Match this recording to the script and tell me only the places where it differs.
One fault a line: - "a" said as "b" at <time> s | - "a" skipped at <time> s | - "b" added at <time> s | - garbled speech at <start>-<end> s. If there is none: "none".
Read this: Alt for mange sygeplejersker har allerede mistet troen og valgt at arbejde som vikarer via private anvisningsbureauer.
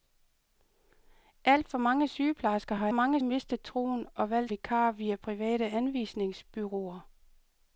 - "allerede" said as "mange" at 2.9 s
- "at arbejde som" skipped at 4.5 s